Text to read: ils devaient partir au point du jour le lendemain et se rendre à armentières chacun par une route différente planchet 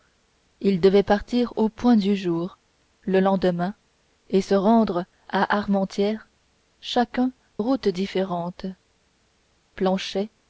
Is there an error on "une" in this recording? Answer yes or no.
yes